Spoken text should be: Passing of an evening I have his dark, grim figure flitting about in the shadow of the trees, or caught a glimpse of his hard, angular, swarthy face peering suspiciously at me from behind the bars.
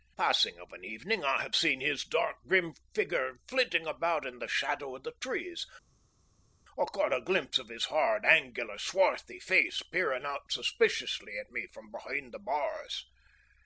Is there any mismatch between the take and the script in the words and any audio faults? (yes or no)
yes